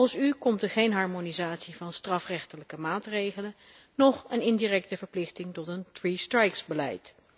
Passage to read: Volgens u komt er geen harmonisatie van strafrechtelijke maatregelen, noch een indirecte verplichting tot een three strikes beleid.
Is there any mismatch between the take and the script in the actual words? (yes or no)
no